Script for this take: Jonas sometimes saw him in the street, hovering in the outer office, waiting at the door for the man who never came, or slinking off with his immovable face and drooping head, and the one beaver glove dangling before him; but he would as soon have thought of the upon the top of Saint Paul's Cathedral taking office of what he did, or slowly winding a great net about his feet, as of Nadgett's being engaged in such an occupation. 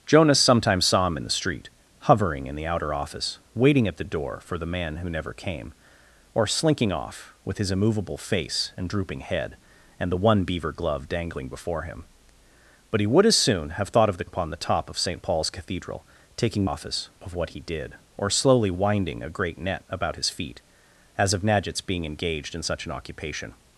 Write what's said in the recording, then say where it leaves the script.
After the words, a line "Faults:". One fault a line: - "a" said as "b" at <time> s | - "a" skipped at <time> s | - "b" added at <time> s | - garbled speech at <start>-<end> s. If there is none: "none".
Jonas sometimes saw him in the street, hovering in the outer office, waiting at the door for the man who never came, or slinking off with his immovable face and drooping head, and the one beaver glove dangling before him; but he would as soon have thought of the upon the top of Saint Paul's Cathedral taking office of what he did, or slowly winding a great net about his feet, as of Nadgett's being engaged in such an occupation.
Faults:
none